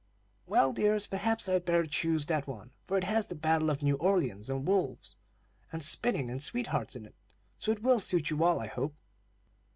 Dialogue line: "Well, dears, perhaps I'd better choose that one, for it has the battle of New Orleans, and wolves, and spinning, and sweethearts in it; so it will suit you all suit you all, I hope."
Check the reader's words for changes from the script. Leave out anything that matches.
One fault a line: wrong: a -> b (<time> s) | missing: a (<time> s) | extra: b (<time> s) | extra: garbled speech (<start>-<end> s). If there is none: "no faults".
missing: suit you all (8.6 s)